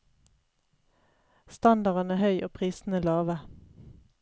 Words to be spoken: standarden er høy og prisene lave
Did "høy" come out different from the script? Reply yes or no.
no